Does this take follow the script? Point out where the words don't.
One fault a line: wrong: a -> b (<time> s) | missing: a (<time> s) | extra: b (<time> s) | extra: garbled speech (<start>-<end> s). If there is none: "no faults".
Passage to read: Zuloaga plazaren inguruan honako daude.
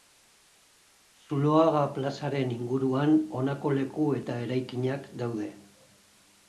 extra: leku eta eraikinak (3.8 s)